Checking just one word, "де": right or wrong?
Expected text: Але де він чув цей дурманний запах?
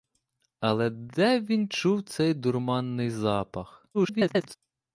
right